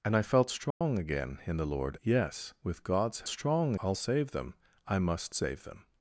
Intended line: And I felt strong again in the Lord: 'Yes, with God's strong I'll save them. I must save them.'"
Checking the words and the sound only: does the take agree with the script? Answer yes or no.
no